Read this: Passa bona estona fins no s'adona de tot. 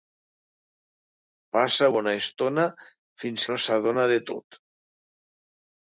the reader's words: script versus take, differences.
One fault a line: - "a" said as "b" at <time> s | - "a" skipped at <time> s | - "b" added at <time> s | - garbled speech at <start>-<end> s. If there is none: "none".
none